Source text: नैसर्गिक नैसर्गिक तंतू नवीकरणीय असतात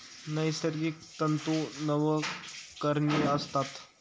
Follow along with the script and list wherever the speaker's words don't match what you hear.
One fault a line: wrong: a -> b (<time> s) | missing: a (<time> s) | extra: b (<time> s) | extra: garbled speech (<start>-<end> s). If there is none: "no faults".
missing: नैसर्गिक (0.9 s)